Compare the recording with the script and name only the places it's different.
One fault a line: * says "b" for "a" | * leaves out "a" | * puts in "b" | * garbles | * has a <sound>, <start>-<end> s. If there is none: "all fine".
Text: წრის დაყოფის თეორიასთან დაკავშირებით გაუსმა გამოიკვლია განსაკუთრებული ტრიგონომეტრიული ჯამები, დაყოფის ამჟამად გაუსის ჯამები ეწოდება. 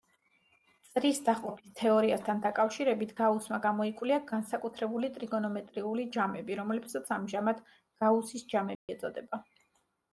* says "რომლებსაც" for "დაყოფის"
* has a dropout, 8.8-8.9 s